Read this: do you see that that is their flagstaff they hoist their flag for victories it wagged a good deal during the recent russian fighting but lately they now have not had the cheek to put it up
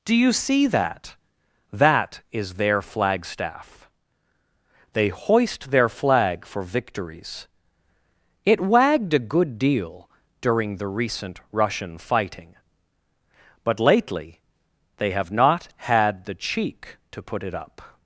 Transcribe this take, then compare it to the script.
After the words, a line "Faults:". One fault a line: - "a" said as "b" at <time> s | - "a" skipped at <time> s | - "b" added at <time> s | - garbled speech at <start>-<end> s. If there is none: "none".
do you see that that is their flagstaff they hoist their flag for victories it wagged a good deal during the recent russian fighting but lately they have not had the cheek to put it up
Faults:
- "now" skipped at 15.1 s